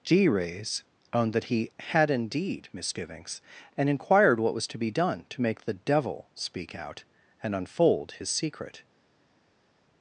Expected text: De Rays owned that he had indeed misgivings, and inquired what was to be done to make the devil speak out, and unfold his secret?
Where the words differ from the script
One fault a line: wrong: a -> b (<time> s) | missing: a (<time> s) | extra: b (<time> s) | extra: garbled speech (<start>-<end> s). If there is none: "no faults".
wrong: De -> G (0.0 s)